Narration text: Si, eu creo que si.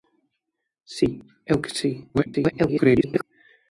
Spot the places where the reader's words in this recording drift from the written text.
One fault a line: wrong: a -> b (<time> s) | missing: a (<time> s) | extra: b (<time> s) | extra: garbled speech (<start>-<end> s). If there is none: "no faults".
missing: creo (1.6 s)
extra: garbled speech (2.1-3.2 s)